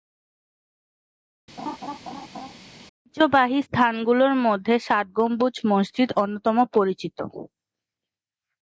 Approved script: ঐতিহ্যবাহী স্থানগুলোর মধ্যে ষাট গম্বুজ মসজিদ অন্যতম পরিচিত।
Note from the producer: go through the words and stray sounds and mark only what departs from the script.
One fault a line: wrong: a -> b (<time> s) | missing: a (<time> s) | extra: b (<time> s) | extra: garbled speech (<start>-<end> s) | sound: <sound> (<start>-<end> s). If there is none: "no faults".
sound: laugh (1.6-2.5 s)